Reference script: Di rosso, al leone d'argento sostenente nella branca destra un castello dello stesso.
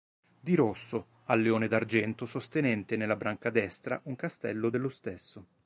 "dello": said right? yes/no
yes